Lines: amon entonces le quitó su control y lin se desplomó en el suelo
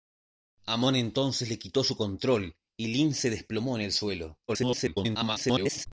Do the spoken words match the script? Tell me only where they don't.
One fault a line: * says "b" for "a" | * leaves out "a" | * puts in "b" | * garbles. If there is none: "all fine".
* garbles